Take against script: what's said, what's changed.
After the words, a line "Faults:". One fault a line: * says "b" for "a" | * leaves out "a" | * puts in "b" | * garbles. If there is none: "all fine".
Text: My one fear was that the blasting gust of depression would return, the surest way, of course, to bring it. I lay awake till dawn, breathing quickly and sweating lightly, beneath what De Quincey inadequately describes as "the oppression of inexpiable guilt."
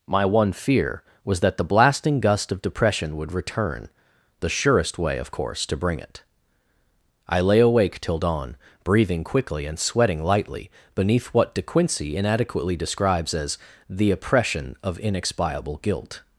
My one fear was that the blasting gust of depression would return, the surest way, of course, to bring it. I lay awake till dawn, breathing quickly and sweating lightly, beneath what De Quincey inadequately describes as "the oppression of inexpiable guilt."
Faults:
all fine